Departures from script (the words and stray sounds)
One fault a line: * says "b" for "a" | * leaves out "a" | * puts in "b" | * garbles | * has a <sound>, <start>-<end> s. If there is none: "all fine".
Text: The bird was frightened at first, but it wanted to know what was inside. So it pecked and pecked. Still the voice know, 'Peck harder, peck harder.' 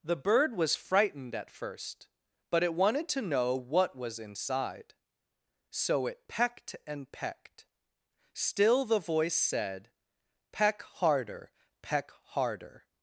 * says "said" for "know"